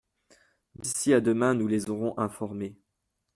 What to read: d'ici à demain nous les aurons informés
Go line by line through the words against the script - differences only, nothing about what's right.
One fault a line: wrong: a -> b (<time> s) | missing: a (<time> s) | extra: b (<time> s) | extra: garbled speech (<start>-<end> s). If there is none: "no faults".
no faults